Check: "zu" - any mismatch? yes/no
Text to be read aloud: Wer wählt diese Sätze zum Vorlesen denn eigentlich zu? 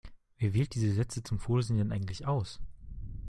yes